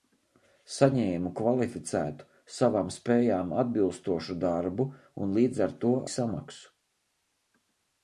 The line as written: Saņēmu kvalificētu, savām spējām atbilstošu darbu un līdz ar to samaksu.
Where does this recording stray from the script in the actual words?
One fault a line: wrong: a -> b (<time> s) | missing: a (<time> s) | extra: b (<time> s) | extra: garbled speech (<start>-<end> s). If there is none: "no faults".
no faults